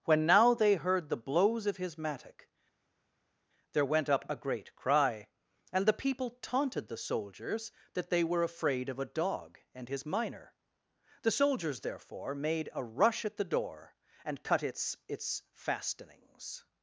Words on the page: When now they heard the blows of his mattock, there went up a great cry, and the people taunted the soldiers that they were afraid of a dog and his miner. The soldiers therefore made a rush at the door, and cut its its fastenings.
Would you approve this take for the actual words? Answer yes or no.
yes